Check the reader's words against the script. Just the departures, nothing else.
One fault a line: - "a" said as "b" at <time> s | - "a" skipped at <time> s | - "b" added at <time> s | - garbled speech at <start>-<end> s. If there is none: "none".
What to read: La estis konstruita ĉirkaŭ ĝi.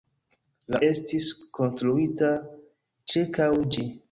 none